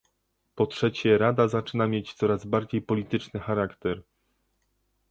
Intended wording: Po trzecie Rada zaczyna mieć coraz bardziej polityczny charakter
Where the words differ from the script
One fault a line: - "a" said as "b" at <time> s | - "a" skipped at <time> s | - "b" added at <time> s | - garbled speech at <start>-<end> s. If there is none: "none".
none